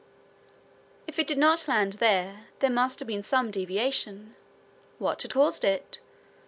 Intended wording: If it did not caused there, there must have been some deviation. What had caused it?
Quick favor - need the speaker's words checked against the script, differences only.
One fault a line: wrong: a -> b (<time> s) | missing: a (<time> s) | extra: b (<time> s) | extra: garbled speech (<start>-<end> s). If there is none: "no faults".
wrong: caused -> land (1.7 s)